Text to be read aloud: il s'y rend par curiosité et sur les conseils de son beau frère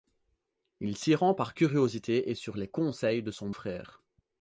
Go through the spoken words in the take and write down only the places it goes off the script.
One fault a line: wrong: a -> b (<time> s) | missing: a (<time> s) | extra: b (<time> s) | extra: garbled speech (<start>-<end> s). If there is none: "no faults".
missing: beau (3.5 s)